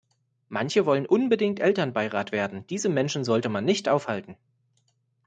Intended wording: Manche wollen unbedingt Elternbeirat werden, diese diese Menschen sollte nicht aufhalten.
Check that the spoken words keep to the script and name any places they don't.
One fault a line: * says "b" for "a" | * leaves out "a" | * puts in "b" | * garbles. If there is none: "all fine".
* leaves out "diese"
* puts in "man"